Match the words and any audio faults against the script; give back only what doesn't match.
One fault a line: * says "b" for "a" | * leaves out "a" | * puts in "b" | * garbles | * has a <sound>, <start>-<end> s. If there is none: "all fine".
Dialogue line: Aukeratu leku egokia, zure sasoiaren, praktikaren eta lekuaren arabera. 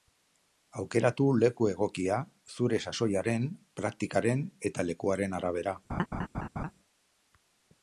* has a laugh, 5.9-6.7 s